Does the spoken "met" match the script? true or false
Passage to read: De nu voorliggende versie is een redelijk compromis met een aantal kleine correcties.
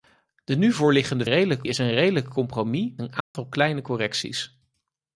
false